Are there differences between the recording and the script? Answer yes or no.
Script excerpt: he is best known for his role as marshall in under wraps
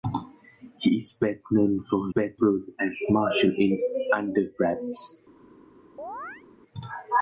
yes